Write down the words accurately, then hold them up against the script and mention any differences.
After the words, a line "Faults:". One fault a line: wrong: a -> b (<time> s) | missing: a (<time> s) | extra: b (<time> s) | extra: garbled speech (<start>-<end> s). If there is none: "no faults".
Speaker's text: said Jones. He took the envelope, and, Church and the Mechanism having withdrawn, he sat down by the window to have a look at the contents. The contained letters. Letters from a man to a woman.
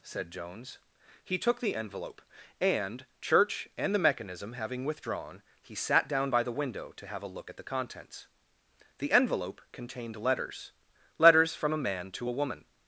said Jones. He took the envelope, and, Church and the Mechanism having withdrawn, he sat down by the window to have a look at the contents. The envelope contained letters. Letters from a man to a woman.
Faults:
extra: envelope (9.1 s)